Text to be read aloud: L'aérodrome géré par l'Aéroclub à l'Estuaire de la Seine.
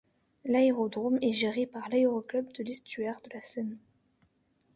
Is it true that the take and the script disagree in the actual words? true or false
true